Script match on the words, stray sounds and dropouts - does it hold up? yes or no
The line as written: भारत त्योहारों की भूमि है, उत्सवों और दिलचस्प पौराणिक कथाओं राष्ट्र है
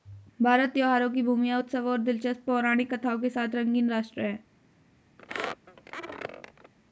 no